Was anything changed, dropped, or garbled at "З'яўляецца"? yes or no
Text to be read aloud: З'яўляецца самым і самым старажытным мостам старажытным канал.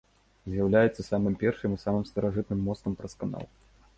no